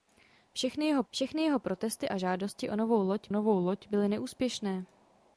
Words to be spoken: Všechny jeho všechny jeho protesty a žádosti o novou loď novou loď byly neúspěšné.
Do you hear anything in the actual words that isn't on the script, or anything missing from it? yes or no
no